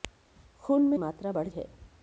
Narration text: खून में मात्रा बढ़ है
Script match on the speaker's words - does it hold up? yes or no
yes